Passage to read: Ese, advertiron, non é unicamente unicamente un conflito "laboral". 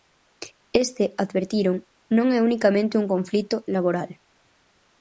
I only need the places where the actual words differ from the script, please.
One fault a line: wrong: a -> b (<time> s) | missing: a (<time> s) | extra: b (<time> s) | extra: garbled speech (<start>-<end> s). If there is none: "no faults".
wrong: Ese -> Este (0.8 s)
missing: unicamente (3.0 s)